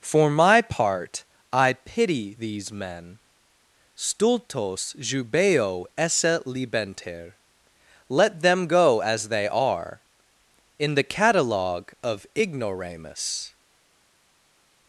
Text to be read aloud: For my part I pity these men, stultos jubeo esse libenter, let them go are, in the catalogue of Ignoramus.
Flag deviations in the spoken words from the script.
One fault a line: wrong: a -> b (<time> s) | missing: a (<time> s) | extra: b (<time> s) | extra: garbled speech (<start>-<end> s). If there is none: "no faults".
extra: as they (9.0 s)